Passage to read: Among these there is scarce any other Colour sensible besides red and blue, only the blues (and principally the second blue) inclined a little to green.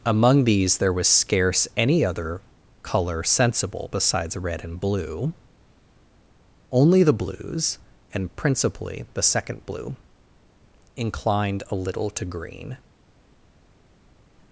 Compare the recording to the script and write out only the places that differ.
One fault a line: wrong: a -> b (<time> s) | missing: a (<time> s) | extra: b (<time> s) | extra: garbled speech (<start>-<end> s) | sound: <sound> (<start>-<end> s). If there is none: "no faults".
wrong: is -> was (0.9 s)